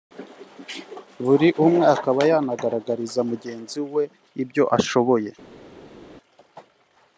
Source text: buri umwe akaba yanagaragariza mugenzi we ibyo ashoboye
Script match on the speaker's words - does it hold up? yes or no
yes